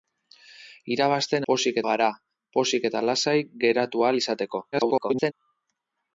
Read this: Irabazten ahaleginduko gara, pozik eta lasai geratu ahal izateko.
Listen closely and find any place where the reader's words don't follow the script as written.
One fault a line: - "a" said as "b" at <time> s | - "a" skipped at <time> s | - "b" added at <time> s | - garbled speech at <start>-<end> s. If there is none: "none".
- "ahaleginduko" said as "pozik" at 1.5 s
- garbled speech at 4.7-5.3 s